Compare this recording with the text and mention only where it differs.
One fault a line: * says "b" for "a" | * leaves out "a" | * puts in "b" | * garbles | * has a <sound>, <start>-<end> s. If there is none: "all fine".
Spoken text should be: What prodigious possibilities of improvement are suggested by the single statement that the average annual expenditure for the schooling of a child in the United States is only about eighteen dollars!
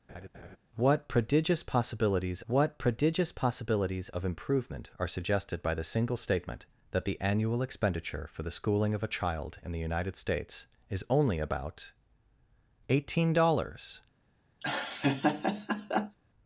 * has a laugh, 0.1-0.6 s
* puts in "what prodigious possibilities"
* leaves out "average"
* has a laugh, 14.6-16.2 s